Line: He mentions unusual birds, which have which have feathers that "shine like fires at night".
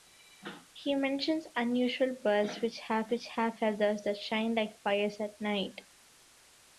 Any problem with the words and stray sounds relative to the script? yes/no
no